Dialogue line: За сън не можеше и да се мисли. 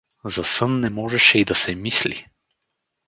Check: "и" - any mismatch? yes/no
no